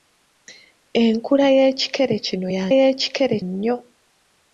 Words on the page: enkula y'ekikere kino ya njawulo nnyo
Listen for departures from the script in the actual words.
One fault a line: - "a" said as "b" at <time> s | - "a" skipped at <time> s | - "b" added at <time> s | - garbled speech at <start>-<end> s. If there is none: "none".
- "njawulo" said as "y'ekikere" at 2.8 s